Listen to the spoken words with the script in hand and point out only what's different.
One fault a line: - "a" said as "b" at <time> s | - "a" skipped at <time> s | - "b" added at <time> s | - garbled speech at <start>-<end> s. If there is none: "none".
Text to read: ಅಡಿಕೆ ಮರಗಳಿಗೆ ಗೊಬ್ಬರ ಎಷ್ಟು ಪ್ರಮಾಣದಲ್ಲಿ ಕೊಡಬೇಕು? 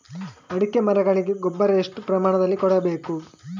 none